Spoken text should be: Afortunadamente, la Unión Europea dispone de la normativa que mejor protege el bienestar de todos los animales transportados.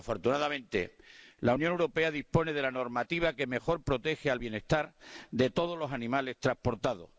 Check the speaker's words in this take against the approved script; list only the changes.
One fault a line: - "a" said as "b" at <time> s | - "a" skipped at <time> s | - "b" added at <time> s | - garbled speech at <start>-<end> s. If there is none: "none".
none